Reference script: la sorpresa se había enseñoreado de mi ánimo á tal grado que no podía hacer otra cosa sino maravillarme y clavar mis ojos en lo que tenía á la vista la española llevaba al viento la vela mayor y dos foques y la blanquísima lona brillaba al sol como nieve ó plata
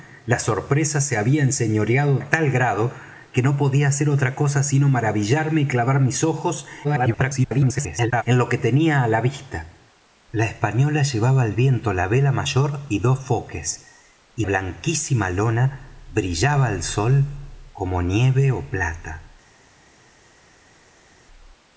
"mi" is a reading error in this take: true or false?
true